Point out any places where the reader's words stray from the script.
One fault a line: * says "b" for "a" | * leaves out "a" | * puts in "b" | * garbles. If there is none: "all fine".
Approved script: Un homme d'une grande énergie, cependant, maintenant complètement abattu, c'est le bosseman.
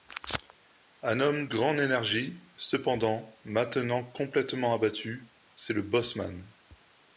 * leaves out "d'une"